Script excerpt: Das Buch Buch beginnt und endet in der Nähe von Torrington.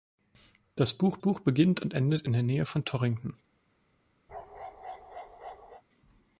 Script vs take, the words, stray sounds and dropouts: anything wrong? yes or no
yes